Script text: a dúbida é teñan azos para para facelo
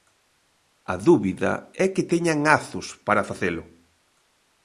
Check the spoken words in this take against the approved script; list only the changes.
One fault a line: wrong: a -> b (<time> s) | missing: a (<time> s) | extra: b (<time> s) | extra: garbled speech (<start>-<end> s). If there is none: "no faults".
extra: que (1.9 s)
missing: para (3.3 s)